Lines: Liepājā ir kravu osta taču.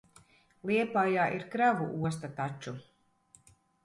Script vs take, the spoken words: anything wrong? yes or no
no